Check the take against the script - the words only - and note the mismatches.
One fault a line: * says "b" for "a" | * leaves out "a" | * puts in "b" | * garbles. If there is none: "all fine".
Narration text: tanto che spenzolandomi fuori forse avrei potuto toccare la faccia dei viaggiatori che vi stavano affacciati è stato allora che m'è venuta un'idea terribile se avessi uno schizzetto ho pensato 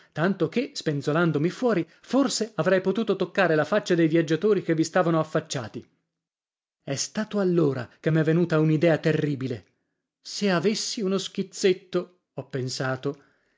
all fine